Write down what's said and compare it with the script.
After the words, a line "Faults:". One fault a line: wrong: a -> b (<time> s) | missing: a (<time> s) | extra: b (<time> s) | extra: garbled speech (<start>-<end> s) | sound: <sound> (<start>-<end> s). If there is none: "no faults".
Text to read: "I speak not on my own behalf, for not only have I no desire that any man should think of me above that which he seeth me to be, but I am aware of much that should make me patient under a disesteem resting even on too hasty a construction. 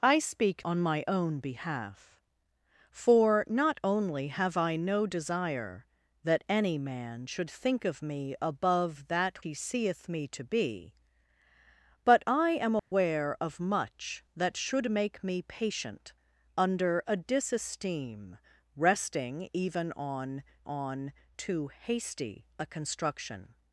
"I speak on my own behalf, for not only have I no desire that any man should think of me above that he seeth me to be, but I am aware of much that should make me patient under a disesteem resting even on on too hasty a construction.
Faults:
missing: not (0.7 s)
missing: which (9.5 s)
sound: dropout (12.8-12.9 s)
extra: on (20.6 s)